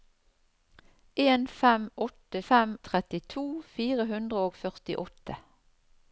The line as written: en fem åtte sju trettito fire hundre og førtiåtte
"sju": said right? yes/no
no